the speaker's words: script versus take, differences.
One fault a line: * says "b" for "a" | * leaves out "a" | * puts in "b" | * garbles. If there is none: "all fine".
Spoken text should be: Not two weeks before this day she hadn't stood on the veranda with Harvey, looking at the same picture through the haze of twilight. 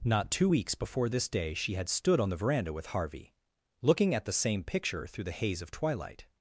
* says "had" for "hadn't"